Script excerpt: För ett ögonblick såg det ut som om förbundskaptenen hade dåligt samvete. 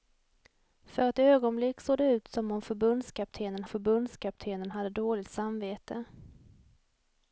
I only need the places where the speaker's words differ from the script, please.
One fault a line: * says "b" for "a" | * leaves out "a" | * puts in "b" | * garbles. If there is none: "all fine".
* puts in "förbundskaptenen"